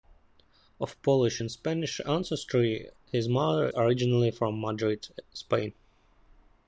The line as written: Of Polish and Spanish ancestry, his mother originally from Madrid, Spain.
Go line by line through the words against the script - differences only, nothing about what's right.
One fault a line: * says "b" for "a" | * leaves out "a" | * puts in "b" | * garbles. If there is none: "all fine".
all fine